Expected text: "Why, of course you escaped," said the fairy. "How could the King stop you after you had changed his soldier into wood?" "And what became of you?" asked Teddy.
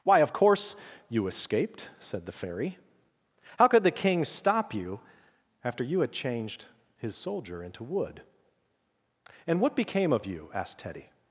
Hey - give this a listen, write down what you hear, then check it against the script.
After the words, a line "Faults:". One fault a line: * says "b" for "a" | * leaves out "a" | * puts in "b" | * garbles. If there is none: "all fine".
"Why, of course you escaped," said the fairy. "How could the King stop you after you had changed his soldier into wood?" "And what became of you?" asked Teddy.
Faults:
all fine